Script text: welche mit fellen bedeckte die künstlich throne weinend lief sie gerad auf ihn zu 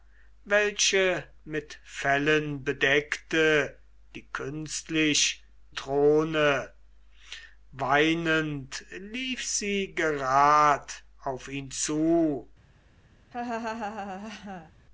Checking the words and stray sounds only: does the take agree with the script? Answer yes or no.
no